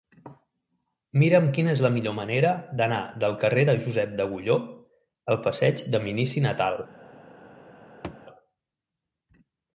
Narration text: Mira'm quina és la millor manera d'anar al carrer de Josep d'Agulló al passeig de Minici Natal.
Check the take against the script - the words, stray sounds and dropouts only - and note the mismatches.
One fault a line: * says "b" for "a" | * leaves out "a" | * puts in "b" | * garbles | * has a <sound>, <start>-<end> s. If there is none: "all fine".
* says "del" for "al"
* has a thud, 8.0-8.3 s